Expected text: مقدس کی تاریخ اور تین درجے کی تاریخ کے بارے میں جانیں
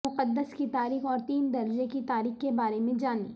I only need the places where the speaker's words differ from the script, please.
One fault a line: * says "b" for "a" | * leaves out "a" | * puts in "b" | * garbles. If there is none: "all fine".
all fine